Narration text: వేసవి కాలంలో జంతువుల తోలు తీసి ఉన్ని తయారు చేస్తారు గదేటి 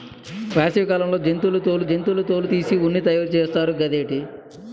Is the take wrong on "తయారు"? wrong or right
right